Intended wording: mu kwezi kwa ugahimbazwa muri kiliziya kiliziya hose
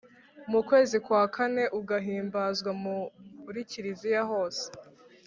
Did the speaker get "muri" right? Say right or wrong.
right